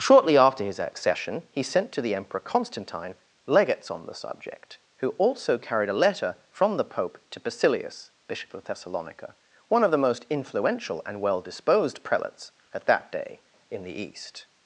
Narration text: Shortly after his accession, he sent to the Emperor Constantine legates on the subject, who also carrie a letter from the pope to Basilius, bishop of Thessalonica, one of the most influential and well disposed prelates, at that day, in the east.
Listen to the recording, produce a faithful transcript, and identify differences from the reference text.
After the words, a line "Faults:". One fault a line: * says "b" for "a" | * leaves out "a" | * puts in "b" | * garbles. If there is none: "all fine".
Shortly after his accession, he sent to the Emperor Constantine legates on the subject, who also carried a letter from the pope to Basilius, bishop of Thessalonica, one of the most influential and well disposed prelates, at that day, in the east.
Faults:
* says "carried" for "carrie"